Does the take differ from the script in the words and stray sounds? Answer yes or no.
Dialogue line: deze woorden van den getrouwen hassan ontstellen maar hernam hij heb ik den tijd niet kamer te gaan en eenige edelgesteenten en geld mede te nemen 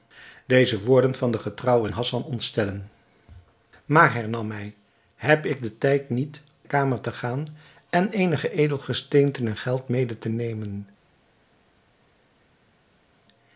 no